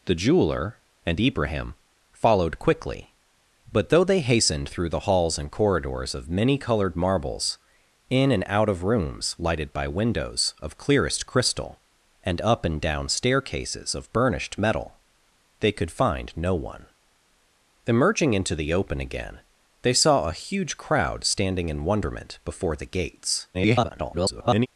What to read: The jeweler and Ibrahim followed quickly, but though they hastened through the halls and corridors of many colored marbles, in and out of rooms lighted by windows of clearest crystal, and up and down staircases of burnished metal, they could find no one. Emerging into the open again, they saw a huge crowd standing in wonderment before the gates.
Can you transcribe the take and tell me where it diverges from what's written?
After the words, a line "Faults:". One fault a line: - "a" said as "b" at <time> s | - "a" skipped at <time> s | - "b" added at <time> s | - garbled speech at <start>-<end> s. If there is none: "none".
The jeweler and Ibrahim followed quickly, but though they hastened through the halls and corridors of many colored marbles, in and out of rooms lighted by windows of clearest crystal, and up and down staircases of burnished metal, they could find no one. Emerging into the open again, they saw a huge crowd standing in wonderment before the gates. [garbled]
Faults:
- garbled speech at 23.5-24.7 s